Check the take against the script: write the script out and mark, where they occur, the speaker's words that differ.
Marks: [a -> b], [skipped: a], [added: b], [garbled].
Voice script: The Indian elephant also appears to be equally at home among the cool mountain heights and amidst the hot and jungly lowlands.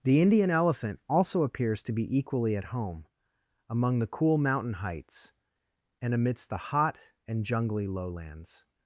The Indian elephant also appears to be equally at home among the cool mountain heights and amidst the hot and jungly lowlands.